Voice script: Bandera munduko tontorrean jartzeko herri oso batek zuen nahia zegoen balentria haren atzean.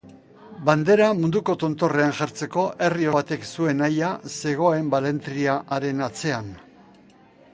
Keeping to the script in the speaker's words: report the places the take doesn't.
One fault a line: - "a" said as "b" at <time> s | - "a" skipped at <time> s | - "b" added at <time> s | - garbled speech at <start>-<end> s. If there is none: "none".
- "oso" skipped at 3.1 s